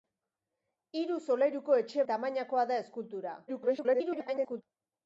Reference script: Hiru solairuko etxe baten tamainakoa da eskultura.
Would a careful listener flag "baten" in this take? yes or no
yes